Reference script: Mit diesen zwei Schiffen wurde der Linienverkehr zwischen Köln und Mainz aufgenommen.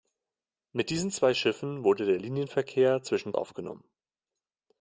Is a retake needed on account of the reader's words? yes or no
yes